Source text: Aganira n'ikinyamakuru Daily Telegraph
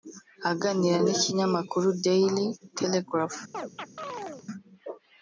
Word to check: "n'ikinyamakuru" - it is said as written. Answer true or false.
true